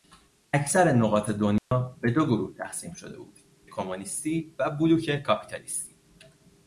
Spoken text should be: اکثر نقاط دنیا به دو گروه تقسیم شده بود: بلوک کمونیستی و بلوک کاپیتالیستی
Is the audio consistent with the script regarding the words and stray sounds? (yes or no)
no